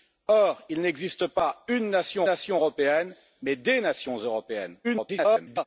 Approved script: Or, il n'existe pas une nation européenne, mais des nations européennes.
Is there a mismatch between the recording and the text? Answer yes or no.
yes